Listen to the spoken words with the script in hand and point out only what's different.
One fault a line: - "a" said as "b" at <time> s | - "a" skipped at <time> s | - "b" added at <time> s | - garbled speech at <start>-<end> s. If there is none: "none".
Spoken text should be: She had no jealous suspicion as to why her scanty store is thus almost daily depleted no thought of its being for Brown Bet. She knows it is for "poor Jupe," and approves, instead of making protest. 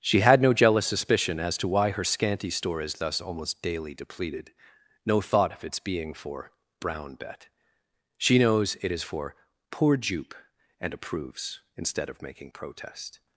none